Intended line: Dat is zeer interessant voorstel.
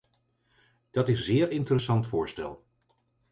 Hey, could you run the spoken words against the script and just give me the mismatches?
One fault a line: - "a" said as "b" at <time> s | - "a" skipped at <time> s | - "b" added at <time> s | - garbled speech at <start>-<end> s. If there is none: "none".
none